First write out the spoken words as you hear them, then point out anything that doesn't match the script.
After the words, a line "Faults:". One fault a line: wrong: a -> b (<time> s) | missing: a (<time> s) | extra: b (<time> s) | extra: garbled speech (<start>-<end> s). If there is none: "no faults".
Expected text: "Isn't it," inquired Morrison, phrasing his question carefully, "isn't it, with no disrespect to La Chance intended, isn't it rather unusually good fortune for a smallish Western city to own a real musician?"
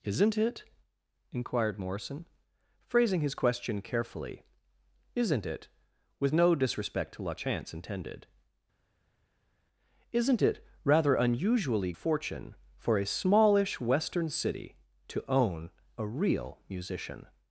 "Isn't it," inquired Morrison, phrasing his question carefully, "isn't it, with no disrespect to La Chance intended, isn't it rather unusually fortune for a smallish Western city to own a real musician?"
Faults:
missing: good (11.9 s)